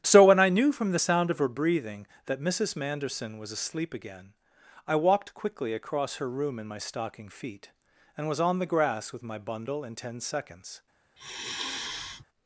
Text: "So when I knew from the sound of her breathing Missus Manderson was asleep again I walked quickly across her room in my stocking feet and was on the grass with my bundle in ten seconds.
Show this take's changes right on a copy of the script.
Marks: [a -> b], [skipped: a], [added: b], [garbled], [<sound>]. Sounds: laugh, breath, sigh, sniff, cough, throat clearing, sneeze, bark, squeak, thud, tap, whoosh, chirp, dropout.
"So when I knew from the sound of her breathing [added: that] Missus Manderson was asleep again I walked quickly across her room in my stocking feet and was on the grass with my bundle in ten seconds. [sigh]